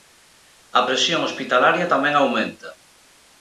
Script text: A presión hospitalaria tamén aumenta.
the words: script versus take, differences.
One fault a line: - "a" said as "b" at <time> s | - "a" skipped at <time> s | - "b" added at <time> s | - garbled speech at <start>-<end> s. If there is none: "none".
none